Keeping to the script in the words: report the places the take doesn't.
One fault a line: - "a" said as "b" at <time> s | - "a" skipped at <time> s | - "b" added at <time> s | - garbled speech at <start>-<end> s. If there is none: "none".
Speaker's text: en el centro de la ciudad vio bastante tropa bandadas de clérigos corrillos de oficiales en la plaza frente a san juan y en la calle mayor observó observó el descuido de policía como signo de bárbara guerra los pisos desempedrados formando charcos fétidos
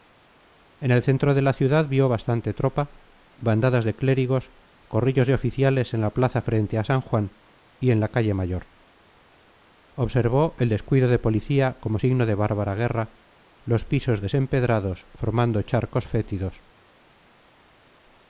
- "observó" skipped at 10.6 s